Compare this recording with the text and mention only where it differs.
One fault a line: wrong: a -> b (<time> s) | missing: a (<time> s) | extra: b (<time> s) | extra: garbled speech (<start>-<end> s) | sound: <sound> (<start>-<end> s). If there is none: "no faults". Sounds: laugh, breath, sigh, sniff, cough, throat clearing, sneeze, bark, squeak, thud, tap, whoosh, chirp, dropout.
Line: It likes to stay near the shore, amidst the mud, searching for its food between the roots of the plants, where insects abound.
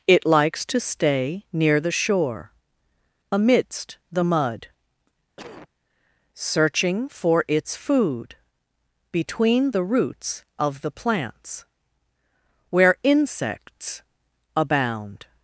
sound: cough (5.4-5.7 s)